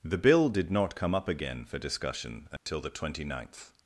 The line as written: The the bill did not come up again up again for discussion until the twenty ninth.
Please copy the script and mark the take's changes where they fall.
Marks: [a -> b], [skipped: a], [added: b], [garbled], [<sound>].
The [skipped: the] bill did not come up again [skipped: up again] for discussion until [dropout] the twenty ninth.